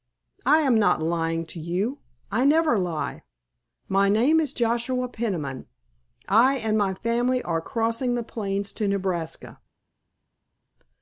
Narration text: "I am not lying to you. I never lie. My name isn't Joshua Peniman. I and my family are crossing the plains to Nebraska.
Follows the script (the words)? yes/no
no